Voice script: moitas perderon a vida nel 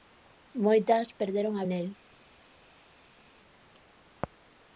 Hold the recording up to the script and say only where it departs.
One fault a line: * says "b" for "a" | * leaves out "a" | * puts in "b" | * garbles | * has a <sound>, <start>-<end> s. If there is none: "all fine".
* leaves out "vida"